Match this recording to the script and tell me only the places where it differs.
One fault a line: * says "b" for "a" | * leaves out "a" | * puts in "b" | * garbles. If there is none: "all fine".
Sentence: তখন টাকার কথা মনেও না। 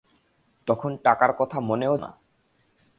all fine